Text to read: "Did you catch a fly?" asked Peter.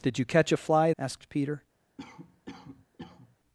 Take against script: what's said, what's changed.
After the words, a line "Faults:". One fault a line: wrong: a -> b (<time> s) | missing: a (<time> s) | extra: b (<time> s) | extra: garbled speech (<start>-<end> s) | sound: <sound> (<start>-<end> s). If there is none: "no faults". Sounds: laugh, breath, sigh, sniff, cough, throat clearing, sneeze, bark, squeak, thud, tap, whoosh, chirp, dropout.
"Did you catch a fly?" asked Peter.
Faults:
sound: cough (2.0-3.4 s)